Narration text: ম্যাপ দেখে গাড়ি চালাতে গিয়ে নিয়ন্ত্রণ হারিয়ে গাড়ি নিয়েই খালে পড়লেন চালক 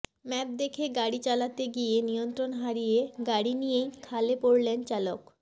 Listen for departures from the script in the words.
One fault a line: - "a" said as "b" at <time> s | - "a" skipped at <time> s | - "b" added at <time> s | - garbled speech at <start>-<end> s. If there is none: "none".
none